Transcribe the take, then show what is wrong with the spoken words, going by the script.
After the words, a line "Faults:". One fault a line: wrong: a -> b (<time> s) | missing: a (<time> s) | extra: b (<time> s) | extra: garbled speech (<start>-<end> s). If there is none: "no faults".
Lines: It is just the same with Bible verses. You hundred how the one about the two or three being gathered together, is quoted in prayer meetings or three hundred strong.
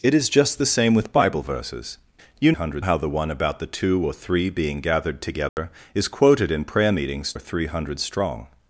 It is just the same with Bible verses. You hundred how the one about the two or three being gathered together, is quoted in prayer meetings or three hundred strong.
Faults:
no faults